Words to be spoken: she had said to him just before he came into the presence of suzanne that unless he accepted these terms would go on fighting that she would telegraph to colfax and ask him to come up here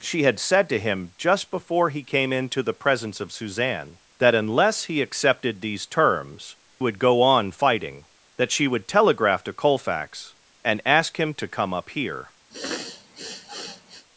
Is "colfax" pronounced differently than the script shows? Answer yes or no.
no